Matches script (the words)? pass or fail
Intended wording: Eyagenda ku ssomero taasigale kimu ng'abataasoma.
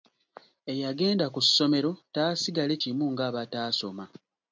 pass